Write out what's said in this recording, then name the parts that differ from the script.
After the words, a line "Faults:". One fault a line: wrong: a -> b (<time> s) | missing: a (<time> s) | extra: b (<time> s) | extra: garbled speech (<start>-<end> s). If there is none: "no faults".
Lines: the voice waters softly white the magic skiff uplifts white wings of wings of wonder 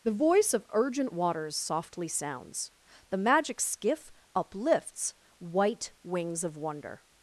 the voice of urgent waters softly sounds the magic skiff uplifts white wings of wonder
Faults:
extra: of urgent (0.5 s)
wrong: white -> sounds (2.1 s)
missing: wings of (6.5 s)